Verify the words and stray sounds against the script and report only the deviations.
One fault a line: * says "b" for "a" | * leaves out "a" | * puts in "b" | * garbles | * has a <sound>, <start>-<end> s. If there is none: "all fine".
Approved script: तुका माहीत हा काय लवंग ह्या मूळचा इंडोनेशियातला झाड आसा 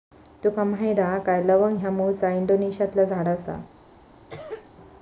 * has a cough, 4.3-4.7 s